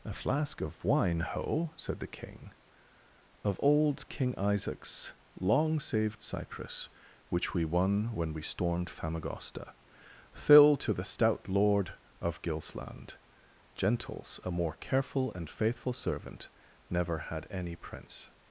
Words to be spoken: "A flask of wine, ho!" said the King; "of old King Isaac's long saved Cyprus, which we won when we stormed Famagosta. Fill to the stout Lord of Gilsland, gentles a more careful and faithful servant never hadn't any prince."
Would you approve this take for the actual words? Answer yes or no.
no